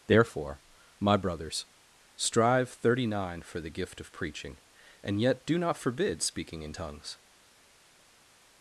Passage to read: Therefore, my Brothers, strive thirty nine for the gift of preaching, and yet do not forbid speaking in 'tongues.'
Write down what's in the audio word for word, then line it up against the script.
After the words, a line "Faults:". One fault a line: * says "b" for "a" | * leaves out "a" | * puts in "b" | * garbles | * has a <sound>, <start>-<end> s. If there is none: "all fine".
Therefore, my Brothers, strive thirty nine for the gift of preaching, and yet do not forbid speaking in 'tongues.'
Faults:
all fine